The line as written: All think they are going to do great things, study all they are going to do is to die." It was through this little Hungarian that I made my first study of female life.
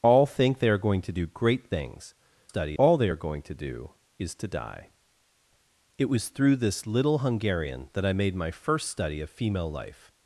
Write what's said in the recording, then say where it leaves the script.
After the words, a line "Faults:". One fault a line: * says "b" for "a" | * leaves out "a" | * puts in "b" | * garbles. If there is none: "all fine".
All think they are going to do great things, study all they are going to do is to die." It was through this little Hungarian that I made my first study of female life.
Faults:
all fine